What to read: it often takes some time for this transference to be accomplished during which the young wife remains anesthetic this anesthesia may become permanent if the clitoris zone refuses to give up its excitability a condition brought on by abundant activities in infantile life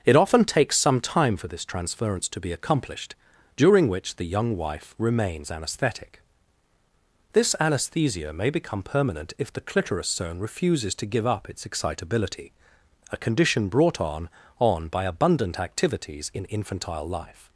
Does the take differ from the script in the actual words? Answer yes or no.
yes